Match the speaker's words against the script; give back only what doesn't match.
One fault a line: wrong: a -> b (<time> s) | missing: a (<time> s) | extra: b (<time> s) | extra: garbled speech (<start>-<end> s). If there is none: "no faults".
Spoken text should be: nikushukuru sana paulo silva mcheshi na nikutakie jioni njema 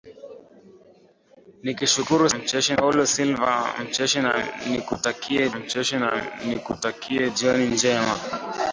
wrong: sana -> mcheshi (2.4 s)
extra: mcheshi na nikutakie (5.6 s)